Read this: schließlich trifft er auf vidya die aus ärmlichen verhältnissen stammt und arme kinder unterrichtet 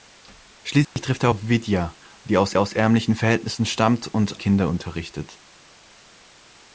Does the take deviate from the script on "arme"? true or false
true